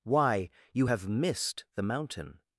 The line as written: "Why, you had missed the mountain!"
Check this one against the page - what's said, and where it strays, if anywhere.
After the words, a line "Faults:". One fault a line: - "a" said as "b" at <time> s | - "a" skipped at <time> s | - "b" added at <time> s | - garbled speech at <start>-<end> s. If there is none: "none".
"Why, you have missed the mountain!"
Faults:
- "had" said as "have" at 0.9 s